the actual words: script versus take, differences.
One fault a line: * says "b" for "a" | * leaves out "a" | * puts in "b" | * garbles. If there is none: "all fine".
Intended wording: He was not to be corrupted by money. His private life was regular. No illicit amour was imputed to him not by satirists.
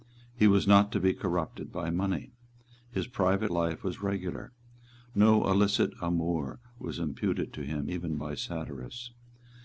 * says "even" for "not"